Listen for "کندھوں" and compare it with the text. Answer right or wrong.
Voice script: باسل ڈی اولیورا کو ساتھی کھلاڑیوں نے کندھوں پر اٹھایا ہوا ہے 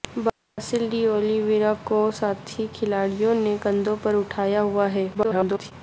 right